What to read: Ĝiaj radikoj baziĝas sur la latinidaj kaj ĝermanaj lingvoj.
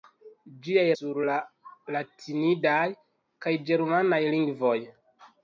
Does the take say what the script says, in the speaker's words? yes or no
no